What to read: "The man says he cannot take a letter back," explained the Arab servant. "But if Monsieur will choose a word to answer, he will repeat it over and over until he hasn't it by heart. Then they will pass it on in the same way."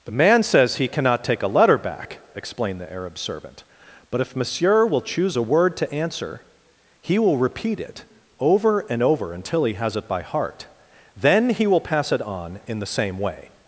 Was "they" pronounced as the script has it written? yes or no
no